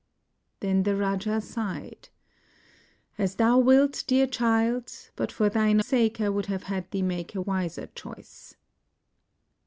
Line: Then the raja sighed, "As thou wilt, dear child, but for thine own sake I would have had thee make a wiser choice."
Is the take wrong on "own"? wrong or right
wrong